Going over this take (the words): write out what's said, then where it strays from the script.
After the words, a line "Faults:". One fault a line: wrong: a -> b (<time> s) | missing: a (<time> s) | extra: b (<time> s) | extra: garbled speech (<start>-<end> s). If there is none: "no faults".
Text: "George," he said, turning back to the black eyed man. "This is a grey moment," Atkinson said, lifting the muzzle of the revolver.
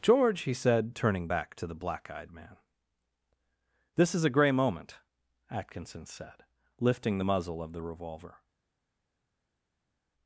"George," he said, turning back to the black eyed man. "This is a grey moment," Atkinson said, lifting the muzzle of the revolver.
Faults:
no faults